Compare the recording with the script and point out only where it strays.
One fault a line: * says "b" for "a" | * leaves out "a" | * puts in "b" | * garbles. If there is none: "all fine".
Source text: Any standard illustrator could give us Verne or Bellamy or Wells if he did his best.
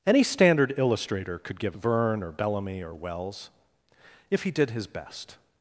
* leaves out "us"